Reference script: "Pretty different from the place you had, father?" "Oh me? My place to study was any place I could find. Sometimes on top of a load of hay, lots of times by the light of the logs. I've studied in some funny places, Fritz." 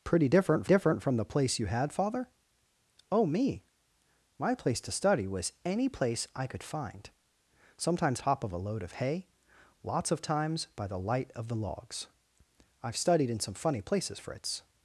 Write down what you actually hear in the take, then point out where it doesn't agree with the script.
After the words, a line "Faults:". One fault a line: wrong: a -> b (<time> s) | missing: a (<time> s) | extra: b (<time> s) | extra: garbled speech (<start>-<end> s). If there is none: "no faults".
"Pretty different different from the place you had, father?" "Oh me? My place to study was any place I could find. Sometimes top of a load of hay, lots of times by the light of the logs. I've studied in some funny places, Fritz."
Faults:
extra: different (0.6 s)
missing: on (8.2 s)